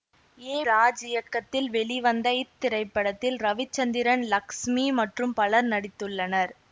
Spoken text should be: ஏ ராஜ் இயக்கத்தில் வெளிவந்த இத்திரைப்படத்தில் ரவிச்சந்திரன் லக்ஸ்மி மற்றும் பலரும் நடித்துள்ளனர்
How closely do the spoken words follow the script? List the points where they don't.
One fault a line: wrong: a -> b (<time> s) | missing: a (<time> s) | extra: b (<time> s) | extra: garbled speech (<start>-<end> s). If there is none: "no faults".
no faults